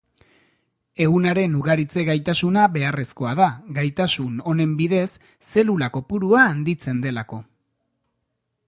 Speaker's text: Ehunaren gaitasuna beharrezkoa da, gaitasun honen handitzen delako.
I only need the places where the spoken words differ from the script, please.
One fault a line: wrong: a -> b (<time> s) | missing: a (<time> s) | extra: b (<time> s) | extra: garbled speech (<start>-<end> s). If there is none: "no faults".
extra: ugaritze (1.6 s)
extra: bidez zelula kopurua (4.8 s)